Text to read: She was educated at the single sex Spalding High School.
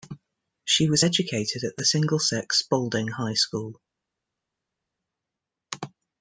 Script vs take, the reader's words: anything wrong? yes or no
no